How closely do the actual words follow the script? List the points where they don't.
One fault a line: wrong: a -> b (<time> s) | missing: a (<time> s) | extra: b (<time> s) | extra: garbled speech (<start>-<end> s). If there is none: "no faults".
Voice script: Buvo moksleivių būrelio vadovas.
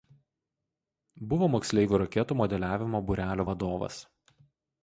extra: raketų modeliavimo (2.0 s)